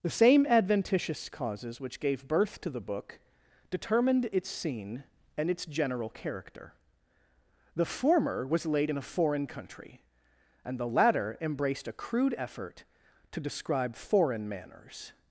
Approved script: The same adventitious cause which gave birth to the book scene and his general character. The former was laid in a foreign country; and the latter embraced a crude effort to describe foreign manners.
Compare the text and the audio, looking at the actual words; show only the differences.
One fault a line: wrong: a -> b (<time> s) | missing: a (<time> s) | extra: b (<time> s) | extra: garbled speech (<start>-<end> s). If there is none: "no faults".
wrong: cause -> causes (1.3 s)
extra: determined its (3.7 s)
wrong: his -> its (5.5 s)